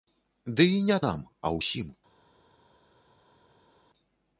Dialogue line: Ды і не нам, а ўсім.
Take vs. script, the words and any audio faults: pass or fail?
pass